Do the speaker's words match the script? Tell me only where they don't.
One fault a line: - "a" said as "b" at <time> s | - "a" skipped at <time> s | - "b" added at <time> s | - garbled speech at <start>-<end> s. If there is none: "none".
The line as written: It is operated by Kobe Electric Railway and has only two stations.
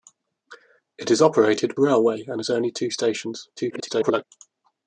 - "by Kobe Electric" skipped at 1.8 s
- garbled speech at 3.6-4.2 s